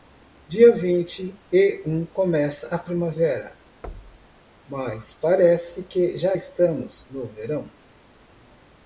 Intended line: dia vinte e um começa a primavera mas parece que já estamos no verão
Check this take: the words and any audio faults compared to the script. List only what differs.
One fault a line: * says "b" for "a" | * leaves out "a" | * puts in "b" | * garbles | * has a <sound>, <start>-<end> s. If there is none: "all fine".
* has a thud, 3.8-4.4 s